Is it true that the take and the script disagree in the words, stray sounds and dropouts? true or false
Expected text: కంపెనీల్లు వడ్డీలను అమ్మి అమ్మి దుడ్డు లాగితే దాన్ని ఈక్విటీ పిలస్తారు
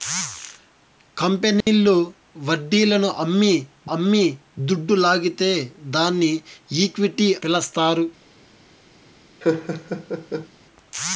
true